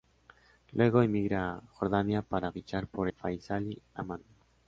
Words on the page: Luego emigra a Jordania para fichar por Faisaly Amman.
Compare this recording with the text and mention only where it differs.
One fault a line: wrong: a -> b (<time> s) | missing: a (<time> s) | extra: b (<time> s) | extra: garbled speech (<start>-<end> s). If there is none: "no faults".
no faults